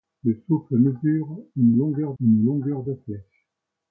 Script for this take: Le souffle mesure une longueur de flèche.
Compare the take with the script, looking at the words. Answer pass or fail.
fail